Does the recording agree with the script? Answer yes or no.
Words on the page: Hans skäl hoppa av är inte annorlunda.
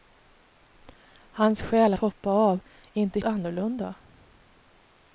yes